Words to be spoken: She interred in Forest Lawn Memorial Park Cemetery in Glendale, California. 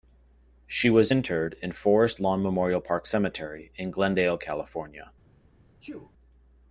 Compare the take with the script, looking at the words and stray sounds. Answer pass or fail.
fail